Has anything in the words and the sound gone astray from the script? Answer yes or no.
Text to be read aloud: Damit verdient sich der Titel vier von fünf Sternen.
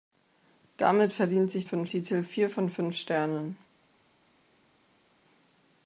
yes